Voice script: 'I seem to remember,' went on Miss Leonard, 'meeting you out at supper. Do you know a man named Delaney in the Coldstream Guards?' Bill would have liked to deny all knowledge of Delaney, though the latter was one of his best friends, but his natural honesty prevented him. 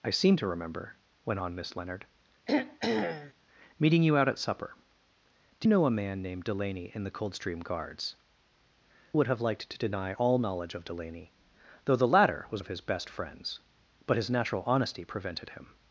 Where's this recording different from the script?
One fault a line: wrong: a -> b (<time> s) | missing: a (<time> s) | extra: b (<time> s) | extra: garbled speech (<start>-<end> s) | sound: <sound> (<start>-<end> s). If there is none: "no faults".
sound: throat clearing (2.5-3.3 s)
missing: you (5.7 s)
missing: Bill (8.1 s)
missing: one (12.6 s)